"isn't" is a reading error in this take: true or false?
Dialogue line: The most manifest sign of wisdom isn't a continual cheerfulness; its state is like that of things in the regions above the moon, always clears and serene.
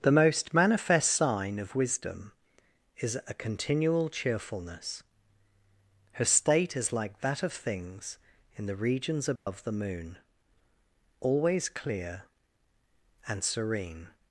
true